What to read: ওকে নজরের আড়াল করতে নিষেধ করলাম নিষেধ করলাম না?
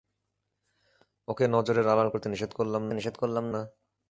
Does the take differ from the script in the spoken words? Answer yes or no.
no